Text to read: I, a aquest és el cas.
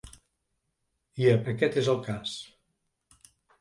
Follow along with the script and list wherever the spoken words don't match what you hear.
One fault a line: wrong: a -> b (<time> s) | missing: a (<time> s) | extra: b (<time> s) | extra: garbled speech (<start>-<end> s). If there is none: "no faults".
no faults